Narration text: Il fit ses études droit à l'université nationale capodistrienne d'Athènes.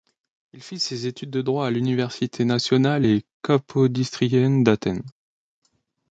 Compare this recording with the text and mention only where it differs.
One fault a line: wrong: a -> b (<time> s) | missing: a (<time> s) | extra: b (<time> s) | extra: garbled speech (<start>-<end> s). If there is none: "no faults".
extra: de (1.3 s)
extra: et (3.0 s)